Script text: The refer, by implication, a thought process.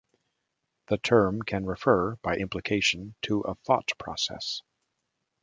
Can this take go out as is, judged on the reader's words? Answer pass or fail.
fail